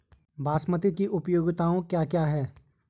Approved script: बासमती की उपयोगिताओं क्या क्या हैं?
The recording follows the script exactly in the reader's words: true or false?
true